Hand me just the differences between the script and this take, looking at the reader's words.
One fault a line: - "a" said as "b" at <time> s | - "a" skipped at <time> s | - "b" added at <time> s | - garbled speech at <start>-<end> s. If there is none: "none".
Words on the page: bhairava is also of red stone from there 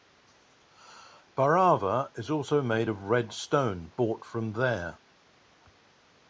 - "made" added at 2.6 s
- "brought" added at 4.0 s